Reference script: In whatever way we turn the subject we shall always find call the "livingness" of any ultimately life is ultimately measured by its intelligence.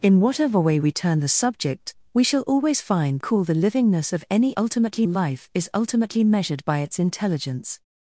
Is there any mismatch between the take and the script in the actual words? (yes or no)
no